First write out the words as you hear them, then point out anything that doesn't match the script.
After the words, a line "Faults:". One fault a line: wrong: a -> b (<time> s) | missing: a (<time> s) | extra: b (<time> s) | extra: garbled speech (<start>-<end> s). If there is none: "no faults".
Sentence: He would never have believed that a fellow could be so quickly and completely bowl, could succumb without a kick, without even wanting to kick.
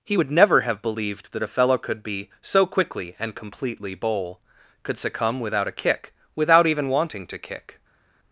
He would never have believed that a fellow could be so quickly and completely bowl, could succumb without a kick, without even wanting to kick.
Faults:
no faults